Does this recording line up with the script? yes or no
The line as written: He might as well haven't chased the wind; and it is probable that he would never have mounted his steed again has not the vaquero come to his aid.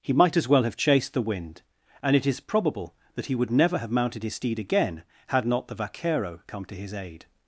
no